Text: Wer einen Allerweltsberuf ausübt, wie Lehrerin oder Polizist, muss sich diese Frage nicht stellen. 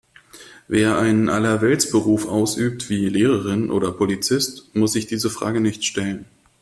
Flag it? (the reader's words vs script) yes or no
no